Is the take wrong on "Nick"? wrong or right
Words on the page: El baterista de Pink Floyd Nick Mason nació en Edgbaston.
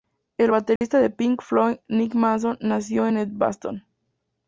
right